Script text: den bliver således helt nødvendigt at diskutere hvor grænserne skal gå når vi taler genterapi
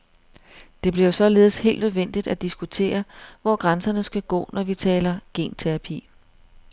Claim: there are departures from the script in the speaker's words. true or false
true